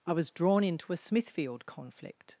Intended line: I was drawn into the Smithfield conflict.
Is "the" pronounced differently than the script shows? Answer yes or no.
yes